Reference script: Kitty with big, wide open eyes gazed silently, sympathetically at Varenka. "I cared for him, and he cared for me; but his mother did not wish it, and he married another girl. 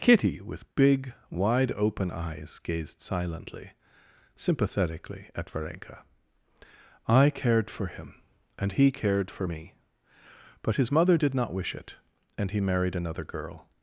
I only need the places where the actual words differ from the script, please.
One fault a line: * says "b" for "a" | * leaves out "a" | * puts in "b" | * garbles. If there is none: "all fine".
all fine